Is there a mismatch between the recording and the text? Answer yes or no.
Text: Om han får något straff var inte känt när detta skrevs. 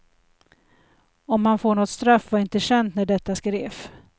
no